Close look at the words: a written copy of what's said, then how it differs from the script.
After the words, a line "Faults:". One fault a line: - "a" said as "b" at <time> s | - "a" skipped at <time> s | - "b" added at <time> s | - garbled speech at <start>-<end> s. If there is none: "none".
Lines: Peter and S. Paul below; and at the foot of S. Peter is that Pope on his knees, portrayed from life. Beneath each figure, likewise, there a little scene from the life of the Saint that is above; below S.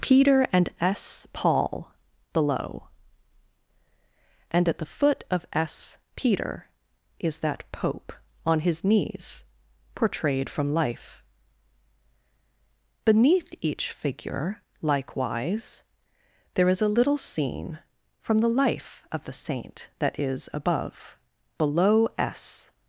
Peter and S. Paul below; and at the foot of S. Peter is that Pope on his knees, portrayed from life. Beneath each figure, likewise, there is a little scene from the life of the Saint that is above; below S.
Faults:
- "is" added at 16.7 s